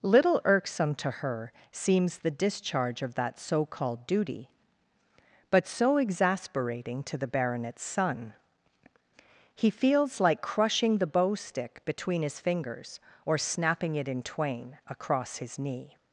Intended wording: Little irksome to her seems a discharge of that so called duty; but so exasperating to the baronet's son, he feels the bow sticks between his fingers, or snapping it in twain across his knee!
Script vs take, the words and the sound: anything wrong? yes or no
yes